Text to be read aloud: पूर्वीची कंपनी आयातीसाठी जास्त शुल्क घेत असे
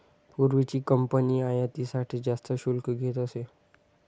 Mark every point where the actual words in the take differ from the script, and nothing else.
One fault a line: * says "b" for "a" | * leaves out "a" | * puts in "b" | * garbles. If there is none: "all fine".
all fine